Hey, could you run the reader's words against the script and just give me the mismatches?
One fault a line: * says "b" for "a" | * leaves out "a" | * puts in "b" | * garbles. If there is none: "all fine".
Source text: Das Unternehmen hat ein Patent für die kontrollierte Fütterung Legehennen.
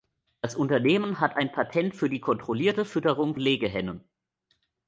all fine